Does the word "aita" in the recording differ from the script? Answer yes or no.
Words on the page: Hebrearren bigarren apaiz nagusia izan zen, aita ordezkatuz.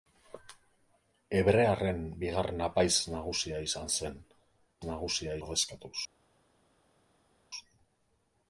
yes